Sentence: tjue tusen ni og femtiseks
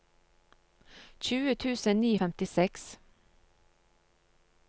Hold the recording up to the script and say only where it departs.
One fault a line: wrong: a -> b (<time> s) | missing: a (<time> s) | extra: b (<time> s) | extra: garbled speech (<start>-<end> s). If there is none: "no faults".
no faults